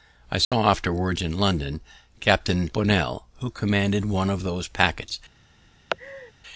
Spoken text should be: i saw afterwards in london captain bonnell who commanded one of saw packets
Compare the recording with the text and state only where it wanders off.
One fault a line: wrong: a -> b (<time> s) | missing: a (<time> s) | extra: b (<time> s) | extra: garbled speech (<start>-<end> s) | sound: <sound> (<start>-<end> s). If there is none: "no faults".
sound: dropout (0.4-0.5 s)
wrong: saw -> those (4.4 s)
sound: laugh (5.9-6.3 s)